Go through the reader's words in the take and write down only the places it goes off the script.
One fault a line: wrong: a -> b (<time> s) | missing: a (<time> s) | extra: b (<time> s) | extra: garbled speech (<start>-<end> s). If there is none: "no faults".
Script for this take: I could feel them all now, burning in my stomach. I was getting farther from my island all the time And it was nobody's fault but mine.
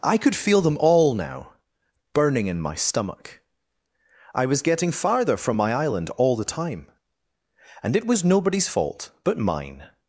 no faults